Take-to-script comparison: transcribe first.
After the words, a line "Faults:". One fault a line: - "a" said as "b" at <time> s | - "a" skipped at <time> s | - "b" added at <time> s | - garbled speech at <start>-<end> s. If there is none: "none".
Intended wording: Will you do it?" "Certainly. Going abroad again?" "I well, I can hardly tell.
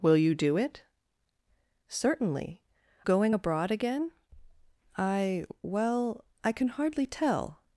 Will you do it?" "Certainly. Going abroad again?" "I well, I can hardly tell.
Faults:
none